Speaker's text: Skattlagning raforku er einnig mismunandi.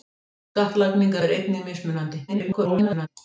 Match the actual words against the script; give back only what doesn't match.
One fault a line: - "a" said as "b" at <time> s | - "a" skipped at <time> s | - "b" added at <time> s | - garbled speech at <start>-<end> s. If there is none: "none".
- "raforku" skipped at 1.1 s
- garbled speech at 2.3-3.1 s